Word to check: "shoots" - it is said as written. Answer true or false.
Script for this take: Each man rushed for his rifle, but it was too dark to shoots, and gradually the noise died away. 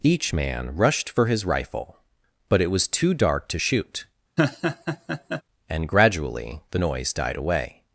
false